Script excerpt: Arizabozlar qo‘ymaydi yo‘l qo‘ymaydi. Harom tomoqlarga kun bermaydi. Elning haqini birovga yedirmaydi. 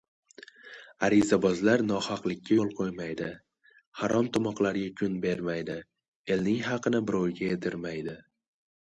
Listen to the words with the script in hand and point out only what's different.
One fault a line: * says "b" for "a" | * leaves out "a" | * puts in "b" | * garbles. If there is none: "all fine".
* says "nohaqlikka" for "qo‘ymaydi"